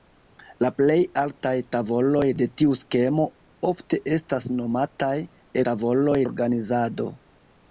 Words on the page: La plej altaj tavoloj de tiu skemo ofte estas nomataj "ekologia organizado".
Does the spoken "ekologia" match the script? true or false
false